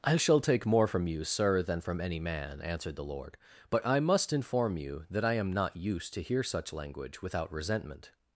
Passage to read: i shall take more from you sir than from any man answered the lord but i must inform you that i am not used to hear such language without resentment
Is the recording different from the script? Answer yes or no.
no